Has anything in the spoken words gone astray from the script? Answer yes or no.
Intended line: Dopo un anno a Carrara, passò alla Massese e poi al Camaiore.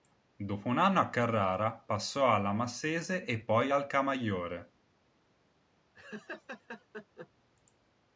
no